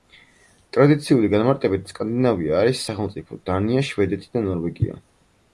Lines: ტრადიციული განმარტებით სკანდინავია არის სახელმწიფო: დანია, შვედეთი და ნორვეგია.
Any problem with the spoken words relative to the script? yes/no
no